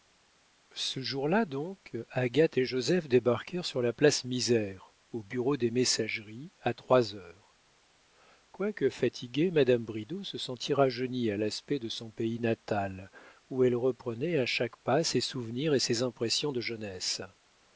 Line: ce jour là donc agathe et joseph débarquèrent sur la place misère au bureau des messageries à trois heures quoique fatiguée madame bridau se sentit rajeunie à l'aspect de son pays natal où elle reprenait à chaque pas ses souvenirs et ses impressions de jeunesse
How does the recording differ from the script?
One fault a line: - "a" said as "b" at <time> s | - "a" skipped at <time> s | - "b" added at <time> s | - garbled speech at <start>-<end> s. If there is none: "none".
none